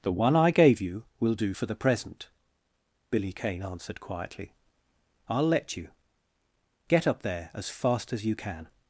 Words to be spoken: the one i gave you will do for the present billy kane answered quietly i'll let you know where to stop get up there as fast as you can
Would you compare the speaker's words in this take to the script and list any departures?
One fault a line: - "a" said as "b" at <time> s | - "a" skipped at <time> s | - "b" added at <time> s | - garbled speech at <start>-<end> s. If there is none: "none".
- "know where to stop" skipped at 5.9 s